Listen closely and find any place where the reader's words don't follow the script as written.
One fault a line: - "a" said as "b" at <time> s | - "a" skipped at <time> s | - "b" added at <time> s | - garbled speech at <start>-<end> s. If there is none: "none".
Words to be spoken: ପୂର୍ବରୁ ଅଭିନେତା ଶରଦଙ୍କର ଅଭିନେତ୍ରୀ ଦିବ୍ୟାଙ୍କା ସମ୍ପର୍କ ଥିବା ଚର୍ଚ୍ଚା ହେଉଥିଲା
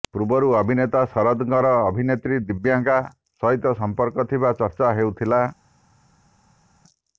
- "ସହିତ" added at 3.4 s